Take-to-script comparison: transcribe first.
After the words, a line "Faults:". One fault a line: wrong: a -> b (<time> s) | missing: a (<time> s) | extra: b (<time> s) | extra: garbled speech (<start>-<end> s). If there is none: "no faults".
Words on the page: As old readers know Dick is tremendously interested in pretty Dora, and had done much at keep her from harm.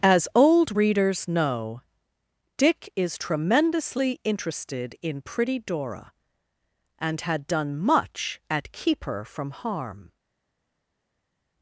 As old readers know Dick is tremendously interested in pretty Dora, and had done much at keep her from harm.
Faults:
no faults